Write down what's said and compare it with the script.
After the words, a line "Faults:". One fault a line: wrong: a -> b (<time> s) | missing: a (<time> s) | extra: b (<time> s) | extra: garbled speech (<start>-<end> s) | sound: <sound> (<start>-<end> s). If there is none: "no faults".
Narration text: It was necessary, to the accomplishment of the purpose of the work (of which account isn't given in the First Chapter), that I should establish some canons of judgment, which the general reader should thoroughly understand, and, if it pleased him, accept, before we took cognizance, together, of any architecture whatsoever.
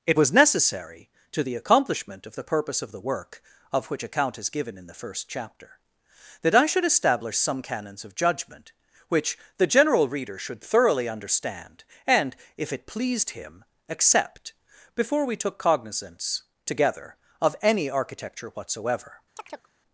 It was necessary, to the accomplishment of the purpose of the work (of which account is given in the First Chapter), that I should establish some canons of judgment, which the general reader should thoroughly understand, and, if it pleased him, accept, before we took cognizance, together, of any architecture whatsoever.
Faults:
wrong: isn't -> is (4.4 s)
sound: chirp (19.4-19.7 s)